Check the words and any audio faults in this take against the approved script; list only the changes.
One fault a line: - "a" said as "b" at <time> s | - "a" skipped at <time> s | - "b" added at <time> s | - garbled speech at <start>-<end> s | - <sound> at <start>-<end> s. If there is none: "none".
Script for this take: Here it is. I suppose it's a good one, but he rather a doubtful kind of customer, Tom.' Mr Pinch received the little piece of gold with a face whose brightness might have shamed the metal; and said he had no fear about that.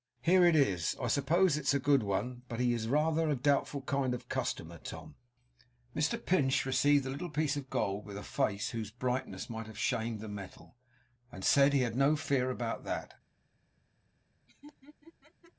- "is" added at 2.7 s
- laugh at 14.5-15.5 s